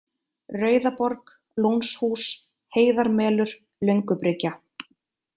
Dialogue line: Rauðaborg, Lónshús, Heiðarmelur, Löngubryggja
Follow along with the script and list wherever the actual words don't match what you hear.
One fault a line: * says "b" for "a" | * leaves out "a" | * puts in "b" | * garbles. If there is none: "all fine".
all fine